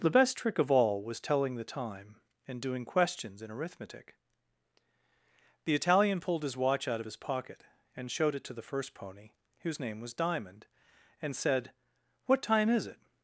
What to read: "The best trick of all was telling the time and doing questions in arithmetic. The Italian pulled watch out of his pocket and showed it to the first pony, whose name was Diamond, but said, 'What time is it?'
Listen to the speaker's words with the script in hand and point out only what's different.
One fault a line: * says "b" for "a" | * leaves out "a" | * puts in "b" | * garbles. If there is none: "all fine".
* puts in "his"
* says "and" for "but"